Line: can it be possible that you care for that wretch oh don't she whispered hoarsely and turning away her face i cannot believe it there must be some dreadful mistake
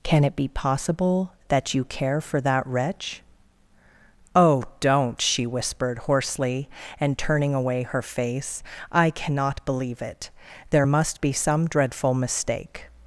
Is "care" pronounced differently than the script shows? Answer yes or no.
no